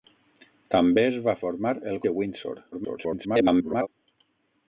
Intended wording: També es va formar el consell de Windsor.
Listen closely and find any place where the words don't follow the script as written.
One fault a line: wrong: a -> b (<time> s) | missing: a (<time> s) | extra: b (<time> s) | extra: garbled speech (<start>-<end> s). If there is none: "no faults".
missing: consell (2.0 s)
extra: garbled speech (2.7-3.9 s)